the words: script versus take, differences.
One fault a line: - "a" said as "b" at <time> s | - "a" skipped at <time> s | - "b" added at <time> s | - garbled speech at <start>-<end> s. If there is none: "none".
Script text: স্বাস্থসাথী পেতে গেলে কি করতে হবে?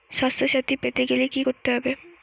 none